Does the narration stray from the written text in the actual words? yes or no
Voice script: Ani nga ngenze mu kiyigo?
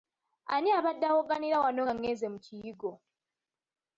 yes